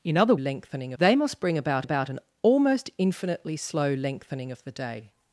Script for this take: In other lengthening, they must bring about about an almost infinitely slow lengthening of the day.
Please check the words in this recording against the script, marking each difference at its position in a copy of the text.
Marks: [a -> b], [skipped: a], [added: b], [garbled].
In other lengthening, they must bring about about an almost infinitely slow lengthening of the day.